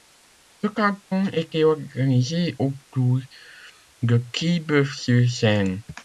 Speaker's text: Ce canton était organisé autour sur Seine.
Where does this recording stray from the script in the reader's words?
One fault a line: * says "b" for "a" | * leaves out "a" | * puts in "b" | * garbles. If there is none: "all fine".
* puts in "de Quillebeuf"